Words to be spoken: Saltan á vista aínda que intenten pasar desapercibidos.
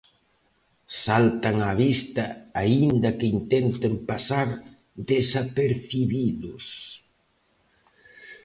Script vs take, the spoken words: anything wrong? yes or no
no